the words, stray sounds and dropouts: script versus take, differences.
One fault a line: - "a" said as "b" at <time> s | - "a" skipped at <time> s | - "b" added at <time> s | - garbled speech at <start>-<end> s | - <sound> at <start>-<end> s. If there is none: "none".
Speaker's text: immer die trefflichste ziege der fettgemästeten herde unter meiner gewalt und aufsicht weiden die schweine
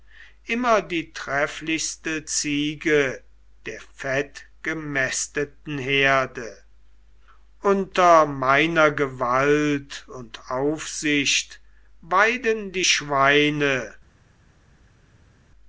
none